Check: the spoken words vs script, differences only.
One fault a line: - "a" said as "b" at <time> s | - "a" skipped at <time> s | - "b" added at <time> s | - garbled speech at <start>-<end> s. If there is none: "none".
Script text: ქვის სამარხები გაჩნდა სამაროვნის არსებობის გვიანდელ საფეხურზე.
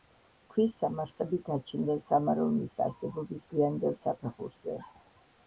none